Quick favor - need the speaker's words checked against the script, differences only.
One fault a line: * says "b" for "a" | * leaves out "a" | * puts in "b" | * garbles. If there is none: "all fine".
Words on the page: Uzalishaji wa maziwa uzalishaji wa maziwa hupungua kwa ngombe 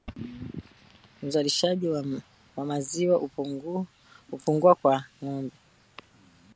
* leaves out "uzalishaji wa maziwa"